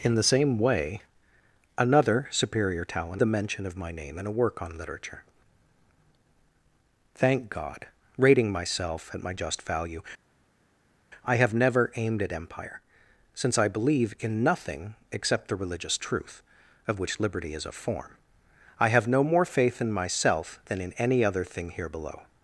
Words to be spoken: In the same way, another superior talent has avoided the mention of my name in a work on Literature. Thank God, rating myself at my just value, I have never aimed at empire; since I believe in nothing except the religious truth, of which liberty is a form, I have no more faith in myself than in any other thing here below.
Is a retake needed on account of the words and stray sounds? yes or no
yes